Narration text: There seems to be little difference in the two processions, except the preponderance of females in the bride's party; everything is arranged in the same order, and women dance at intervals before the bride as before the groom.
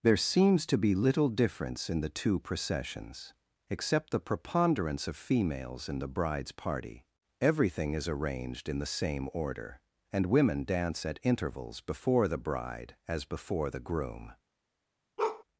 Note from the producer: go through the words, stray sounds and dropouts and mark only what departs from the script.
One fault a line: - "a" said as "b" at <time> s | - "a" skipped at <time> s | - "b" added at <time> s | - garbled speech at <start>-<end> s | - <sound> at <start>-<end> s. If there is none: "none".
- bark at 15.2-15.4 s